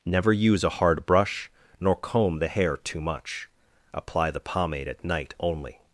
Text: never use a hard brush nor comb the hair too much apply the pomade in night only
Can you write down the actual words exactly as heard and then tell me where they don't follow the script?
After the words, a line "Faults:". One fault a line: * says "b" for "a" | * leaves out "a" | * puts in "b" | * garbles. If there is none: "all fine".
never use a hard brush nor comb the hair too much apply the pomade at night only
Faults:
* says "at" for "in"